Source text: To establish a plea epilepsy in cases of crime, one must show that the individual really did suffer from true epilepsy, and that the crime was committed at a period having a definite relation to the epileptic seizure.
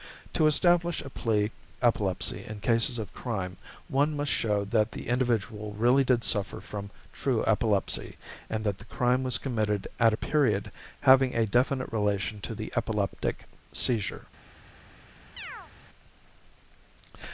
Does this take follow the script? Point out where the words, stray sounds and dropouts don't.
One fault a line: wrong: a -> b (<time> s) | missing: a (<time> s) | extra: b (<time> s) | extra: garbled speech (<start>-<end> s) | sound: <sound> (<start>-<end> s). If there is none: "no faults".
sound: chirp (15.4-15.7 s)